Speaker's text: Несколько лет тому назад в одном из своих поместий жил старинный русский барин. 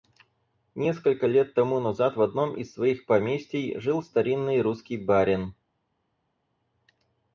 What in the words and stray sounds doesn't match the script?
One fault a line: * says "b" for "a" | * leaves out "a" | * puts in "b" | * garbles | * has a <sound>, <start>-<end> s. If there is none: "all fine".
all fine